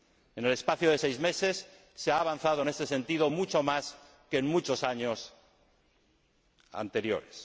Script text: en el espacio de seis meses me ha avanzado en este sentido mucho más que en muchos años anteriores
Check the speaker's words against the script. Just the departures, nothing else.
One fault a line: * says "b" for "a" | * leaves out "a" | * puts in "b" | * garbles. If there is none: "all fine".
* says "se" for "me"